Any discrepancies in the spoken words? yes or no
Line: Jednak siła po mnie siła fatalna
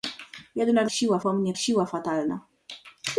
no